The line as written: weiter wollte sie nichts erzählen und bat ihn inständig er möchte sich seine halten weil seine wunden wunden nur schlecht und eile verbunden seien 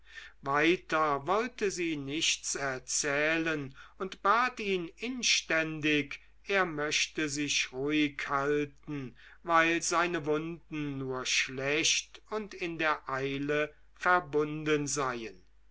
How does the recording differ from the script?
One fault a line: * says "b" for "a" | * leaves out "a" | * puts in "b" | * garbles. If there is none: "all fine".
* says "ruhig" for "seine"
* leaves out "wunden"
* puts in "in der"